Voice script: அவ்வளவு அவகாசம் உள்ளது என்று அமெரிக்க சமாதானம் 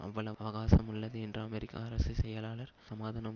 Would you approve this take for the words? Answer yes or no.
no